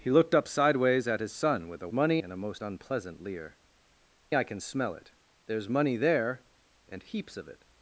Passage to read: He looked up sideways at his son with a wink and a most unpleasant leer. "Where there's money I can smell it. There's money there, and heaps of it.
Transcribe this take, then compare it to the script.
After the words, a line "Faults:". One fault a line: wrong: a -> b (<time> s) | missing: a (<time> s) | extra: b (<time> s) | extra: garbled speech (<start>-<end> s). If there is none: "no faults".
He looked up sideways at his son with a money and a most unpleasant leer. "I can smell it. There's money there, and heaps of it.
Faults:
wrong: wink -> money (1.9 s)
missing: Where there's money (3.6 s)